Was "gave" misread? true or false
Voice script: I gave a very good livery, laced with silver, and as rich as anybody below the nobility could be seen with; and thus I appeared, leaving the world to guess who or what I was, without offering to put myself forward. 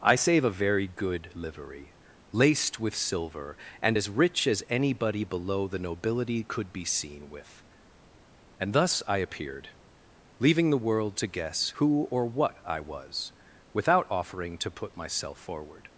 true